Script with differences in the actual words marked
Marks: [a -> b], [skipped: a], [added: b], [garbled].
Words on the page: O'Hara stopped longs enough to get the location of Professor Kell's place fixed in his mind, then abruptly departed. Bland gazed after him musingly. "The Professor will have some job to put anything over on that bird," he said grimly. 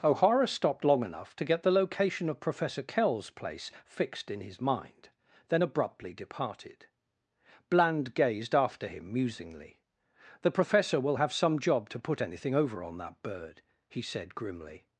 O'Hara stopped [longs -> long] enough to get the location of Professor Kell's place fixed in his mind, then abruptly departed. Bland gazed after him musingly. "The Professor will have some job to put anything over on that bird," he said grimly.